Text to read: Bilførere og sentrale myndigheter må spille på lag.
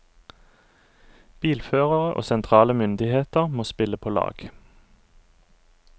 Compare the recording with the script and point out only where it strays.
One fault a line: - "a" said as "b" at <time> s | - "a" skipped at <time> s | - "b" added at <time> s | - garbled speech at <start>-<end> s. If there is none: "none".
none